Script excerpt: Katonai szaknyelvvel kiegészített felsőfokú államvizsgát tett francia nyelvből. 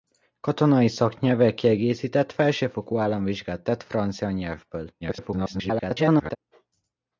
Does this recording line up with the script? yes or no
no